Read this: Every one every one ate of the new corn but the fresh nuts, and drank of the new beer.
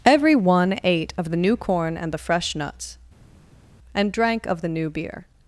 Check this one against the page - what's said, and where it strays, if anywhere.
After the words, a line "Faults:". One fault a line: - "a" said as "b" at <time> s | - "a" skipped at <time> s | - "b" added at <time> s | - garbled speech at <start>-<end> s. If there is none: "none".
Every one ate of the new corn and the fresh nuts, and drank of the new beer.
Faults:
- "every one" skipped at 0.8 s
- "but" said as "and" at 1.9 s